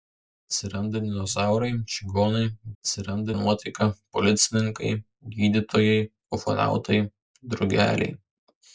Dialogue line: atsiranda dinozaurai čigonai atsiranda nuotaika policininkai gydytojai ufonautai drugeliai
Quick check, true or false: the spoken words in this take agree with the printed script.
true